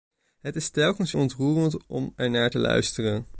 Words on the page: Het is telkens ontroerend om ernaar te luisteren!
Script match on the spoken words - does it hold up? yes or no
yes